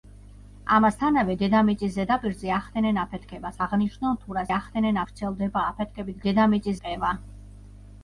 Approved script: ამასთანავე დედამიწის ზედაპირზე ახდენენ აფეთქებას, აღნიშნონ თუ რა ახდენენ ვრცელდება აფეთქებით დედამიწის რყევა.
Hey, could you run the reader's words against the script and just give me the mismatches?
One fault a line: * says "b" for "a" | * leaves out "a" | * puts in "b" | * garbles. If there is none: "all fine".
all fine